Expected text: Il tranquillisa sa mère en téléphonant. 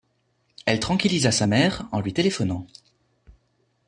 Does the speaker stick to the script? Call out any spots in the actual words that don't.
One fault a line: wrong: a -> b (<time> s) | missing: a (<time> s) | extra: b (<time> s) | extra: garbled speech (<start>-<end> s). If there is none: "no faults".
wrong: Il -> Elle (0.7 s)
extra: lui (2.0 s)